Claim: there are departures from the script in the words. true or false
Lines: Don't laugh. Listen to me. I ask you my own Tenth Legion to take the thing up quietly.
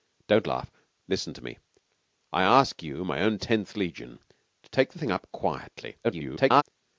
true